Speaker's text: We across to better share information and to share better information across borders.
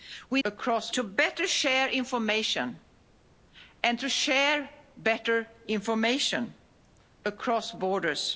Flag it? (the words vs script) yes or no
no